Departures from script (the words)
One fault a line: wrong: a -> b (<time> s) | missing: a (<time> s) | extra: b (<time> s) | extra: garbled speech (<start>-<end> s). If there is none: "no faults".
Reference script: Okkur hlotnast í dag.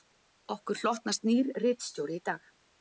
extra: nýr ritstjóri (1.3 s)